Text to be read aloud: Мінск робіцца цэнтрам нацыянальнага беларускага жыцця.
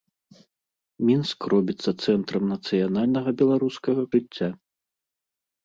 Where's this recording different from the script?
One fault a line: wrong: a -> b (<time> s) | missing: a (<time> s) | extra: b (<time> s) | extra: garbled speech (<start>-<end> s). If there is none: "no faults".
no faults